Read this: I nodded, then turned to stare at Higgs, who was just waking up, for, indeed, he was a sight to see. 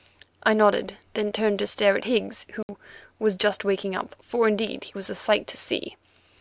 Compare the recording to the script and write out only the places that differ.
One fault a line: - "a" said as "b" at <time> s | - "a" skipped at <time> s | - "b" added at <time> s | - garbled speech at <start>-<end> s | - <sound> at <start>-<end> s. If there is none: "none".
- dropout at 2.6-2.7 s